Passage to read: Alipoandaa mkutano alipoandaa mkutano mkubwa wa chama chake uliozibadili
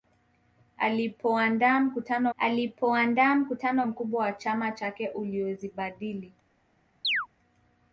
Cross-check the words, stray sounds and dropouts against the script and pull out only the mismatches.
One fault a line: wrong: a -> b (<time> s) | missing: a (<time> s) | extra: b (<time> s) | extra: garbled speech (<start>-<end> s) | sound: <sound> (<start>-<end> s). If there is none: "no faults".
sound: chirp (7.0-7.3 s)